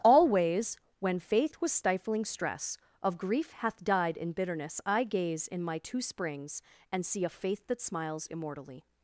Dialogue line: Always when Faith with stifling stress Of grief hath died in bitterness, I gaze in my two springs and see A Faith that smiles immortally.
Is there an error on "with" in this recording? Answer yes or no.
yes